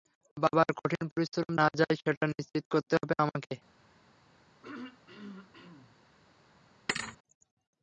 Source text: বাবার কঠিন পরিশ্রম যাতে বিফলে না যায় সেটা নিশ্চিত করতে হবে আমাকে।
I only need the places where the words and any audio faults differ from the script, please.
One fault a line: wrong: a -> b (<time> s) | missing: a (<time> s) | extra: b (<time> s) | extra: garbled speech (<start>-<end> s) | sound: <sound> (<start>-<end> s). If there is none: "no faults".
missing: যাতে বিফলে (1.5 s)
sound: throat clearing (4.6-6.0 s)
sound: thud (6.9-7.2 s)